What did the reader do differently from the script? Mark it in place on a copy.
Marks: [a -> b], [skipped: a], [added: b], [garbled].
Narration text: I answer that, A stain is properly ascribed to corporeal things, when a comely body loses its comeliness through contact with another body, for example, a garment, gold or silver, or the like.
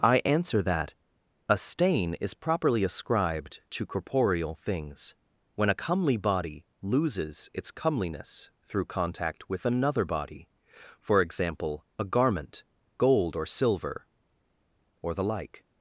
I answer that, A stain is properly ascribed to corporeal things, when a comely body loses its comeliness through contact with another body, for example, a garment, gold or silver, or the like.